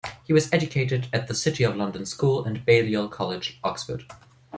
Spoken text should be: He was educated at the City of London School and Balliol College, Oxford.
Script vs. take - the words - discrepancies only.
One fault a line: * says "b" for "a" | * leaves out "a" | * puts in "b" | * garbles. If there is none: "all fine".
all fine